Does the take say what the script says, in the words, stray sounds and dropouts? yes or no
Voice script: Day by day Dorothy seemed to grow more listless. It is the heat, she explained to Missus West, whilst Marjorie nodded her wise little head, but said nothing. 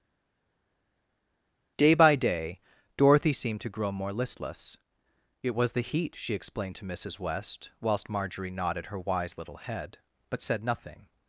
no